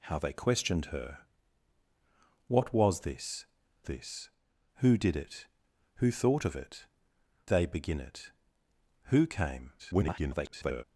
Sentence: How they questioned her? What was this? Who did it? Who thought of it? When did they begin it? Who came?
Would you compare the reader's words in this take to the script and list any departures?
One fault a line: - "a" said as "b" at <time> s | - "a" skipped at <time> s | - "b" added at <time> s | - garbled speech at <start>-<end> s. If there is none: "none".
- "this" added at 3.8 s
- "When did" skipped at 6.9 s
- garbled speech at 9.8-10.8 s